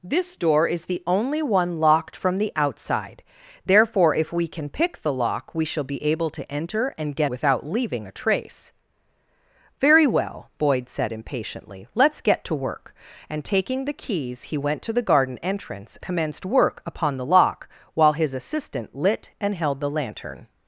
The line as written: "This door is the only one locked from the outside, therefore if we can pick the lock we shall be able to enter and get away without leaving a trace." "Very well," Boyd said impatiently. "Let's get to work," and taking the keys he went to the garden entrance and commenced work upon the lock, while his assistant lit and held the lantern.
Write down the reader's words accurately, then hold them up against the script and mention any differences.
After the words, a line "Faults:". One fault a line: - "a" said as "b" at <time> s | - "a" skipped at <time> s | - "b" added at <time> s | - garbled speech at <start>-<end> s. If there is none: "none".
"This door is the only one locked from the outside, therefore if we can pick the lock we shall be able to enter and get without leaving a trace." "Very well," Boyd said impatiently. "Let's get to work," and taking the keys he went to the garden entrance commenced work upon the lock, while his assistant lit and held the lantern.
Faults:
- "away" skipped at 7.3 s
- "and" skipped at 16.0 s